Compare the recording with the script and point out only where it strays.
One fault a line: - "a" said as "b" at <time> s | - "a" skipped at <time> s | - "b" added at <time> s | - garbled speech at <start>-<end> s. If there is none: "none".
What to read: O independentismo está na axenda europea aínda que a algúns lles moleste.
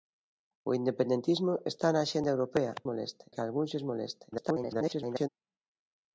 - "aínda" said as "moleste" at 2.9 s
- garbled speech at 4.3-5.3 s